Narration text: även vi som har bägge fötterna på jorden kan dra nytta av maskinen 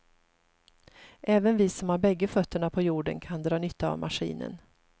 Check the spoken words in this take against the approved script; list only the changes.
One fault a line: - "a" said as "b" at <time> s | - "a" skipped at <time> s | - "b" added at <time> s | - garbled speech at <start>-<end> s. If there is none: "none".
none